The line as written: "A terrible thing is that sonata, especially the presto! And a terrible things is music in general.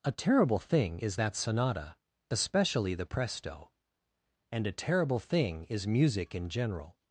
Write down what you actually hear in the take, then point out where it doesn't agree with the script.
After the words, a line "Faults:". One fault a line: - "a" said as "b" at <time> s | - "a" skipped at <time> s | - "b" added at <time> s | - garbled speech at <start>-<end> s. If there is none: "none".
"A terrible thing is that sonata, especially the presto! And a terrible thing is music in general.
Faults:
- "things" said as "thing" at 5.2 s